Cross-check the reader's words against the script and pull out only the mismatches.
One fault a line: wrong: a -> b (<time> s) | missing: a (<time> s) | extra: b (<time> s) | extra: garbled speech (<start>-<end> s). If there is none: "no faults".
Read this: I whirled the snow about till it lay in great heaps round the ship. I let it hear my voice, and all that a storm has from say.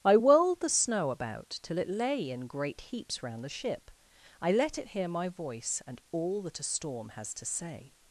wrong: from -> to (7.3 s)